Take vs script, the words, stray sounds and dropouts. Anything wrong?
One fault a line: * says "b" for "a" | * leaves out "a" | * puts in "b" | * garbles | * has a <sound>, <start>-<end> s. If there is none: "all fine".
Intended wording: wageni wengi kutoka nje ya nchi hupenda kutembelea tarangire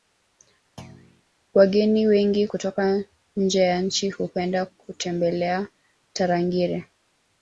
* has a thud, 0.8-1.2 s